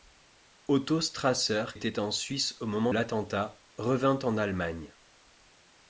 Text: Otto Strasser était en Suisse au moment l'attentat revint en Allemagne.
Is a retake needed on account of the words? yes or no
no